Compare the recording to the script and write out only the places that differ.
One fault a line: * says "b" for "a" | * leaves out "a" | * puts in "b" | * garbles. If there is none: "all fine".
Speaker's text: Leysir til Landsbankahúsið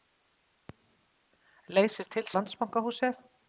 all fine